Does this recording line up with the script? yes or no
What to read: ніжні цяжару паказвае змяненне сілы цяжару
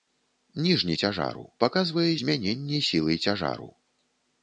yes